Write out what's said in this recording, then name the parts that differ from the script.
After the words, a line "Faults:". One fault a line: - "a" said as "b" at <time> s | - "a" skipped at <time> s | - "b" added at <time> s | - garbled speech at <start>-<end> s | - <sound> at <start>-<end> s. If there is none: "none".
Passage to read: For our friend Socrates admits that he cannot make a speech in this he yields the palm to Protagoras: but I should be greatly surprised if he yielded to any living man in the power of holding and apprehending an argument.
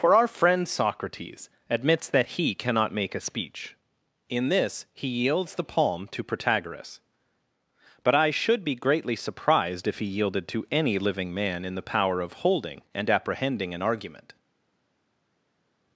For our friend Socrates admits that he cannot make a speech in this he yields the palm to Protagoras: but I should be greatly surprised if he yielded to any living man in the power of holding and apprehending an argument.
Faults:
none